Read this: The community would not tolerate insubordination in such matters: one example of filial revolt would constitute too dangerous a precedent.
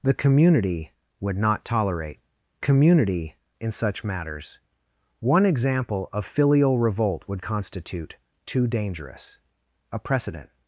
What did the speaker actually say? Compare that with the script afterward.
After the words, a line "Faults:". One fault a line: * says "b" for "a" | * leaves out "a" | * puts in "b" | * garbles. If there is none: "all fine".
The community would not tolerate community in such matters: one example of filial revolt would constitute too dangerous a precedent.
Faults:
* says "community" for "insubordination"